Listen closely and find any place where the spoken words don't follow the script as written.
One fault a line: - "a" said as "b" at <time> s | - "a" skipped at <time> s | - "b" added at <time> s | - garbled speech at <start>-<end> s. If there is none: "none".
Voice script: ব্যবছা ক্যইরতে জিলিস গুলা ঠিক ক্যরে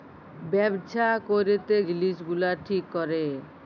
none